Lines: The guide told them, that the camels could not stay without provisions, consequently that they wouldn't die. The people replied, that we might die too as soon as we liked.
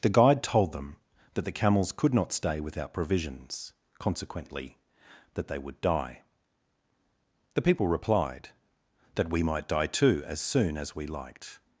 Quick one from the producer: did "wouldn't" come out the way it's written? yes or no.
no